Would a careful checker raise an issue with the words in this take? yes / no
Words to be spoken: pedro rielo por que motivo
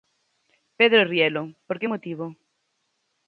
no